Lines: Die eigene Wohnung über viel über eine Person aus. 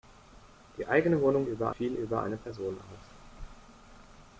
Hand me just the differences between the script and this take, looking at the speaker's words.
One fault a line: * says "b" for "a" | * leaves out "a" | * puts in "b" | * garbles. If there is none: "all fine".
all fine